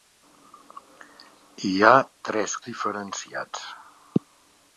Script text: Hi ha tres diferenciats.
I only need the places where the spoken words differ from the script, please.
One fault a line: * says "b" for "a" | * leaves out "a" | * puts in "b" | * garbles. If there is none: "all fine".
all fine